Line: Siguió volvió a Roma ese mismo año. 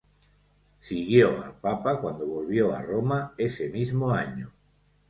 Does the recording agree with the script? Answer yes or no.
no